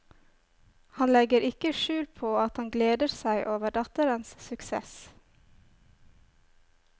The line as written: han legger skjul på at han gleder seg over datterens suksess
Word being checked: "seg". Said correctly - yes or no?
yes